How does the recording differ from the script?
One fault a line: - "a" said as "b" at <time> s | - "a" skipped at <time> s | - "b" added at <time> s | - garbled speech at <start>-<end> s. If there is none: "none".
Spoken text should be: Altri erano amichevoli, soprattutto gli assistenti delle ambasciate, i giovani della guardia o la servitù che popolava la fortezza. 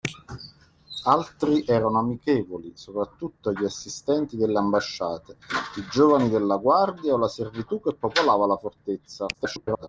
- garbled speech at 9.3-9.9 s